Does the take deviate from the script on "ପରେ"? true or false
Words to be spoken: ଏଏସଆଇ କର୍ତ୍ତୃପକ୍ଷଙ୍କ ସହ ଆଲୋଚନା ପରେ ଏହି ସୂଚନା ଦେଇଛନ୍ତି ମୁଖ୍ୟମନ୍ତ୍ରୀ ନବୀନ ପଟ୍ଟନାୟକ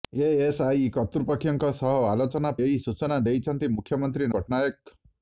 true